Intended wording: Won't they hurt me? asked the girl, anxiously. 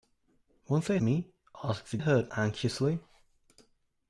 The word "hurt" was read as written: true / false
false